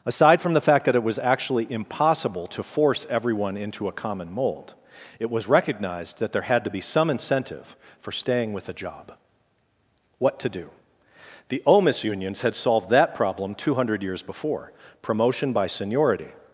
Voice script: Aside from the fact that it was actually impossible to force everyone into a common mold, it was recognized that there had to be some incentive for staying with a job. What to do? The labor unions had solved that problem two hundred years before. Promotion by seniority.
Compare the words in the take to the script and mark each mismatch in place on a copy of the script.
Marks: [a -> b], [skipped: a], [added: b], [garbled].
Aside from the fact that it was actually impossible to force everyone into a common mold, it was recognized that there had to be some incentive for staying with a job. What to do? The [labor -> omis] unions had solved that problem two hundred years before. Promotion by seniority.